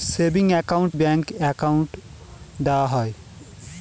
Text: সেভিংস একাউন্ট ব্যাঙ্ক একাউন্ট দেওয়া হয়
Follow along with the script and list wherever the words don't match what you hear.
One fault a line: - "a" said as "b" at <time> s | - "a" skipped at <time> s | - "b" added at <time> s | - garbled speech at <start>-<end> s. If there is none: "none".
none